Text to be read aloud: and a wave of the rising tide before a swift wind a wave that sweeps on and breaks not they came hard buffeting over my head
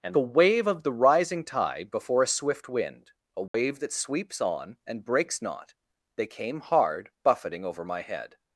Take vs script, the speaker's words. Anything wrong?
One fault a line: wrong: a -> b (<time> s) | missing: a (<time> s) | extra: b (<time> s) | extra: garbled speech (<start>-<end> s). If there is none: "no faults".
no faults